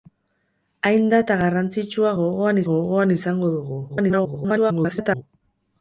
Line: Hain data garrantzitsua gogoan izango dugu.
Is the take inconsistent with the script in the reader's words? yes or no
yes